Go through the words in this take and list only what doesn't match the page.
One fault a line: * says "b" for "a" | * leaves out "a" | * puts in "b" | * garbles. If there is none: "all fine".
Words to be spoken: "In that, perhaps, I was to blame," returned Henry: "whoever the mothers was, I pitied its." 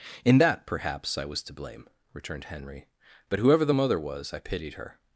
* puts in "but"
* says "mother" for "mothers"
* says "her" for "its"